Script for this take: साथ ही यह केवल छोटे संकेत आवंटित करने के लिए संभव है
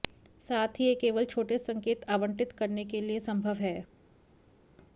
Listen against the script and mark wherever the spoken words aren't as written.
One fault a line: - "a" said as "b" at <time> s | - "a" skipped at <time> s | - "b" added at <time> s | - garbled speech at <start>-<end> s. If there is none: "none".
none